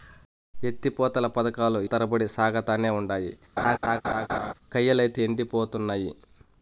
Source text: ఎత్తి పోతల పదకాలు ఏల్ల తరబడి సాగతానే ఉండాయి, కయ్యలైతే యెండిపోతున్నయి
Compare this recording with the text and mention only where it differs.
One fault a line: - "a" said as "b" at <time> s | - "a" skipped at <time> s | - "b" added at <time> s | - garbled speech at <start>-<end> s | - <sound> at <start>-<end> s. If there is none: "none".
- "ఏల్ల" skipped at 1.8 s
- laugh at 3.6-4.5 s